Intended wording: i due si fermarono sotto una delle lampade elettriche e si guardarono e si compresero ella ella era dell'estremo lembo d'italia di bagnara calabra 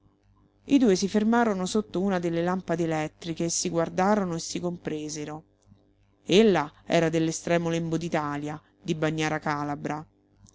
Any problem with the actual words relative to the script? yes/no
yes